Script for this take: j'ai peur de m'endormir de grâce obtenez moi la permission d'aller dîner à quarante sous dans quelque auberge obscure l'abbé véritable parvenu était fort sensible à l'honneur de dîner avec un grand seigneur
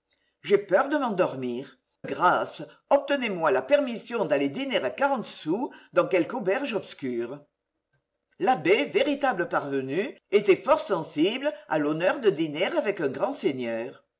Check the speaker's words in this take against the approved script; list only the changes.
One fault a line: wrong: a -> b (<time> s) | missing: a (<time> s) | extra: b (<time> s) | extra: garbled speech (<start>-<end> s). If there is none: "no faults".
missing: de (1.8 s)